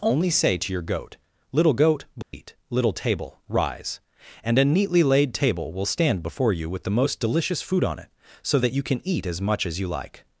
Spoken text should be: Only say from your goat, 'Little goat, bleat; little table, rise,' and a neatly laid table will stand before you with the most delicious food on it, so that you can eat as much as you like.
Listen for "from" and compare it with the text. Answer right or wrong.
wrong